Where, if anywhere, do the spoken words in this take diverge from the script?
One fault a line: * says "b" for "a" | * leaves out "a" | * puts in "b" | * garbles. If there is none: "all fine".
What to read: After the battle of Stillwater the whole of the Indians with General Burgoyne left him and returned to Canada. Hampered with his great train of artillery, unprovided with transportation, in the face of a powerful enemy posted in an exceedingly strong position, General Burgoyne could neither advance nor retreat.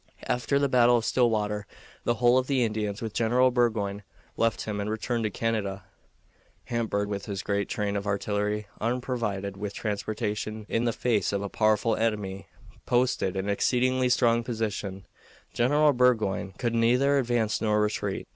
all fine